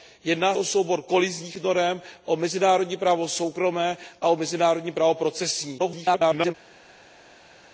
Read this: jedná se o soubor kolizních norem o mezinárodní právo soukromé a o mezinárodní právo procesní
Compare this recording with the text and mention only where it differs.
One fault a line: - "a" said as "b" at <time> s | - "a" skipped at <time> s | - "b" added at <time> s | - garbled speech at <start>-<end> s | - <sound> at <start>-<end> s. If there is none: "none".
- "se" skipped at 0.6 s
- garbled speech at 5.8-6.5 s